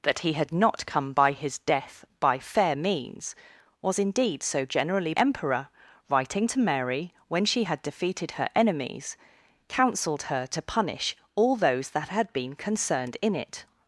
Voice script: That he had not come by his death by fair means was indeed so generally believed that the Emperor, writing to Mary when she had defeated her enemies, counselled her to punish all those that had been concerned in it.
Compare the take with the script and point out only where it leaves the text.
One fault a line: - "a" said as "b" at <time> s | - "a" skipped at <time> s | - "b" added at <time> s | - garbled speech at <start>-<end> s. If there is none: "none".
- "believed that the" skipped at 5.1 s